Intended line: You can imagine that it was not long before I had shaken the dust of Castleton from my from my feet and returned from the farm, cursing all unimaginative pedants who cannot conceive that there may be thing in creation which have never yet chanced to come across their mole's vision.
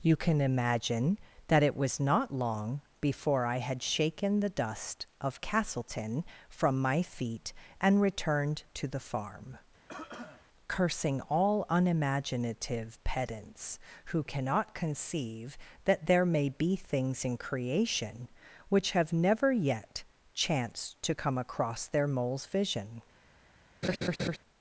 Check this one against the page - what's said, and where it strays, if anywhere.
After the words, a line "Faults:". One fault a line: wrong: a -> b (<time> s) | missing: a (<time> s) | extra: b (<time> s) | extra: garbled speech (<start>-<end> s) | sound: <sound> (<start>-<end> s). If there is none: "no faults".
You can imagine that it was not long before I had shaken the dust of Castleton from my feet and returned to the farm, cursing all unimaginative pedants who cannot conceive that there may be things in creation which have never yet chanced to come across their mole's vision.
Faults:
missing: from my (7.0 s)
wrong: from -> to (8.7 s)
sound: cough (9.9-10.5 s)
wrong: thing -> things (16.8 s)
sound: laugh (23.8-24.4 s)